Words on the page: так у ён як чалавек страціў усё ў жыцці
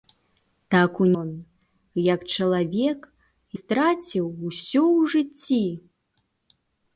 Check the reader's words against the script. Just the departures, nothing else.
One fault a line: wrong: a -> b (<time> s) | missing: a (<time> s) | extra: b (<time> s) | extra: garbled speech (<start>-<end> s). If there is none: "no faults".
no faults